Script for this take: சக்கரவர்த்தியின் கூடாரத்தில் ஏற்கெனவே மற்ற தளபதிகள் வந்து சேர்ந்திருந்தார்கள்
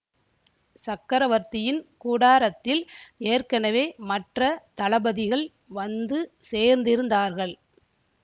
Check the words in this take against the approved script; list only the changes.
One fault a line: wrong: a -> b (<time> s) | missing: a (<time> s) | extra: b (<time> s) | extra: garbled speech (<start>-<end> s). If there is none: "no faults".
no faults